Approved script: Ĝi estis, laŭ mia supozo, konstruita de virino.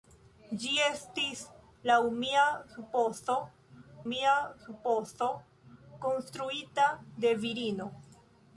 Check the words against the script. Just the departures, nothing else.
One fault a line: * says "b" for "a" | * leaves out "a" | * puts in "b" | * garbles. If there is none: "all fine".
* puts in "mia supozo"